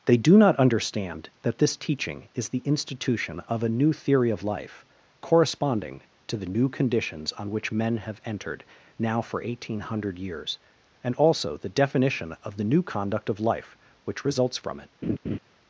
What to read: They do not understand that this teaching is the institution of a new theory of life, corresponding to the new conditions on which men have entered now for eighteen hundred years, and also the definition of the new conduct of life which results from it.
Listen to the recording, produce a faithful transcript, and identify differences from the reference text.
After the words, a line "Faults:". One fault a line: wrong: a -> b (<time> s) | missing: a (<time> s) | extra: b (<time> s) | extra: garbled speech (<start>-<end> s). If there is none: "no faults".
They do not understand that this teaching is the institution of a new theory of life, corresponding to the new conditions on which men have entered now for eighteen hundred years, and also the definition of the new conduct of life which results from it.
Faults:
no faults